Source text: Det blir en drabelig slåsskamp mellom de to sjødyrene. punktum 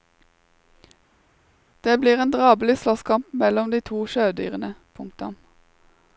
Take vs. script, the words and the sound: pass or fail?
pass